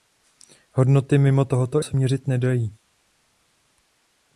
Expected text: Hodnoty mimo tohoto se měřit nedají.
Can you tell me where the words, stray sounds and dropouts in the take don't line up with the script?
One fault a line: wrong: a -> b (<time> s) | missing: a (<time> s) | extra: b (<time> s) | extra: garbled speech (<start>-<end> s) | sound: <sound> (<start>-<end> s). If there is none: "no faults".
no faults